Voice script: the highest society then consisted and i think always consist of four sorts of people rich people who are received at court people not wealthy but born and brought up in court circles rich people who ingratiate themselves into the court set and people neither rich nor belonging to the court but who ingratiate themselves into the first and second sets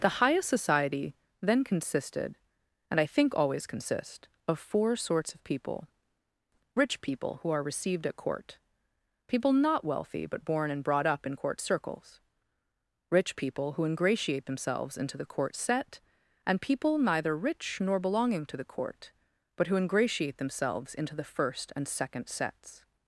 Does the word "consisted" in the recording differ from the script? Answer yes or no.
no